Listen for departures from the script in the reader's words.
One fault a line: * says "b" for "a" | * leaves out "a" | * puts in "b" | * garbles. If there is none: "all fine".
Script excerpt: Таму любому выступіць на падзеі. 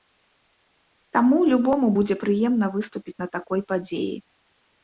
* puts in "будзе прыемна"
* puts in "такой"